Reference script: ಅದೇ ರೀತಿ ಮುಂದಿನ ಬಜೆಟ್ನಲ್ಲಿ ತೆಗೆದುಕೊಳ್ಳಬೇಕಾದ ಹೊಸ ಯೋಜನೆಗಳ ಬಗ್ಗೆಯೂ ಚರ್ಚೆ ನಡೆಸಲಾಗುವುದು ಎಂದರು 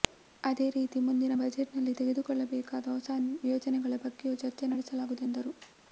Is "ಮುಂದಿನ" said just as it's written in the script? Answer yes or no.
yes